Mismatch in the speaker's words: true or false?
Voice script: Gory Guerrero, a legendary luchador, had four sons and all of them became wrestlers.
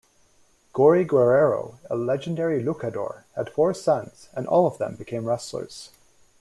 false